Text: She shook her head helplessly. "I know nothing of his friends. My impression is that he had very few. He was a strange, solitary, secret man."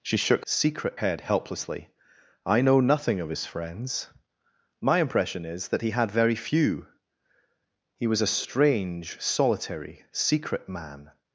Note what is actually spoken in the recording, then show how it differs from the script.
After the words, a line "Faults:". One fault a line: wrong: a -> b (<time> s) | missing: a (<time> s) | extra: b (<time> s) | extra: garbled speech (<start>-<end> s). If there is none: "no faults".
She shook secret head helplessly. "I know nothing of his friends. My impression is that he had very few. He was a strange, solitary, secret man."
Faults:
wrong: her -> secret (0.4 s)